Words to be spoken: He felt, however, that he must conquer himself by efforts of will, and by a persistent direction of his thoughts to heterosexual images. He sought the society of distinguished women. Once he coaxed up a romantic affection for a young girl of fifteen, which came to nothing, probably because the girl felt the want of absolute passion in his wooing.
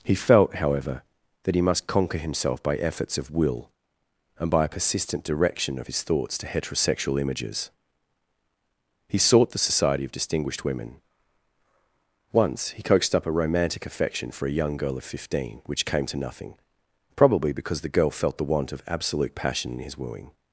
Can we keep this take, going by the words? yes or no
yes